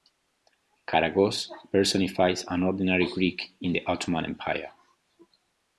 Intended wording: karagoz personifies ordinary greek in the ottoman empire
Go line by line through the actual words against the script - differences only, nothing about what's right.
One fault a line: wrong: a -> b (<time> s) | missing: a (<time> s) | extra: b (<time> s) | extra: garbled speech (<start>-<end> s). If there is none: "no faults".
extra: an (2.5 s)